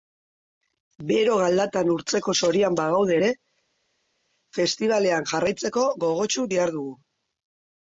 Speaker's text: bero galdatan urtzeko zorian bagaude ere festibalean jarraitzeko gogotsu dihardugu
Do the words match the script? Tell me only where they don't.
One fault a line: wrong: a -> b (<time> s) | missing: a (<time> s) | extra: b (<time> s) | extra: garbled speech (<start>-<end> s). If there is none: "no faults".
no faults